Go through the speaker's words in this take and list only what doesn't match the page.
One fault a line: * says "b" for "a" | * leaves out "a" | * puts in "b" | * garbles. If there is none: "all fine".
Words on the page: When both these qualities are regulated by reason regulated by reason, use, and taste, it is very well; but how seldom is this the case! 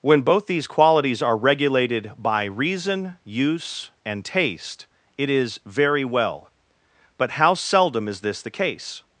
* leaves out "regulated by reason"